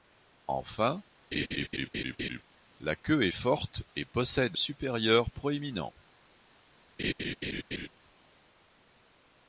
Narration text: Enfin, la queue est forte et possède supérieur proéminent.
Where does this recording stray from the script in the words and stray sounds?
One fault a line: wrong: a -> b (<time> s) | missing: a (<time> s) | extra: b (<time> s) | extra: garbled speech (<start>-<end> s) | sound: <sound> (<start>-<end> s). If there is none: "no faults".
sound: laugh (1.3-2.4 s)
sound: laugh (7.0-7.9 s)